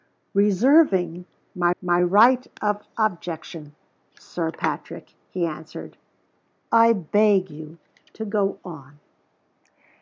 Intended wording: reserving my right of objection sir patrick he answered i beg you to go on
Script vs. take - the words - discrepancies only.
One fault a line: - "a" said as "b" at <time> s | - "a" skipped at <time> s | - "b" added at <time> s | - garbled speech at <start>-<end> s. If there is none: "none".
- "my" added at 1.8 s